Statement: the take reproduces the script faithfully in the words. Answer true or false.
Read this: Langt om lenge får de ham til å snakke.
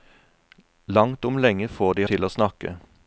false